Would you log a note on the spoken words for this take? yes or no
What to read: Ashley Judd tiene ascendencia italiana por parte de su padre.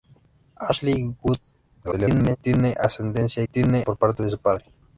yes